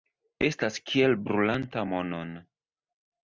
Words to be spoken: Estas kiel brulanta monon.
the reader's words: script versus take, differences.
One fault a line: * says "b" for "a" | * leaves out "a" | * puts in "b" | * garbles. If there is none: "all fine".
all fine